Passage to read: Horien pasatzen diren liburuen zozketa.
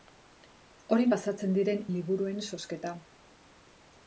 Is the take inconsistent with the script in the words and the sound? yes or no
no